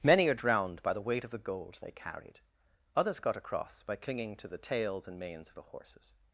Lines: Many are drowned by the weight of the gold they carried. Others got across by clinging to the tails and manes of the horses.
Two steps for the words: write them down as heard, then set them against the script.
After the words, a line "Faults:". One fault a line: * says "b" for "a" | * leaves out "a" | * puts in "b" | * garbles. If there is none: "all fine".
Many are drowned by the weight of the gold they carried. Others got across by clinging to the tails and manes of the horses.
Faults:
all fine